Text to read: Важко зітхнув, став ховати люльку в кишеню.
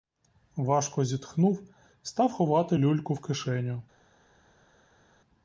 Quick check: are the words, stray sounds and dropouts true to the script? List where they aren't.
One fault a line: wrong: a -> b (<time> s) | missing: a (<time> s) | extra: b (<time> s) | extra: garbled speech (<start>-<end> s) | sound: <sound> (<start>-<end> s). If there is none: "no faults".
no faults